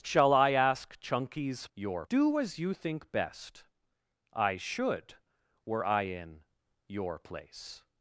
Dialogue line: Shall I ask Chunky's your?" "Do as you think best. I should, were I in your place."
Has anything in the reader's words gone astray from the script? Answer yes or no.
no